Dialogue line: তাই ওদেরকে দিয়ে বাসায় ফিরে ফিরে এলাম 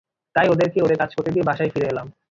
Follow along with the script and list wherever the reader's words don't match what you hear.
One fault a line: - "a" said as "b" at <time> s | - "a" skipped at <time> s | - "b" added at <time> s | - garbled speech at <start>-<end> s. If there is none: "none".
- "ওদের কাজ করতে" added at 0.8 s
- "ফিরে" skipped at 1.9 s